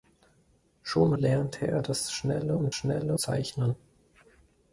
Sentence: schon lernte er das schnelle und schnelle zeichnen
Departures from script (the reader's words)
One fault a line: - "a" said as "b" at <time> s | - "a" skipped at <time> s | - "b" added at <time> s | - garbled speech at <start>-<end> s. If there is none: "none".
none